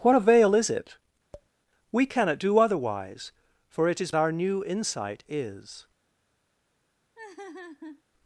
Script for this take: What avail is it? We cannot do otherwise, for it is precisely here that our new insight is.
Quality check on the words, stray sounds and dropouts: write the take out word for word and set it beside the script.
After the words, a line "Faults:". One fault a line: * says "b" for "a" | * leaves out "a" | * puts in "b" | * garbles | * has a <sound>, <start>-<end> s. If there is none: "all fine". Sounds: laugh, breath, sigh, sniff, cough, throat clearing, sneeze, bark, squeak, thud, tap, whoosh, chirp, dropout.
What avail is it? We cannot do otherwise, for it is our new insight is.
Faults:
* has a tap, 1.3-1.5 s
* leaves out "precisely here that"
* has a laugh, 7.2-8.0 s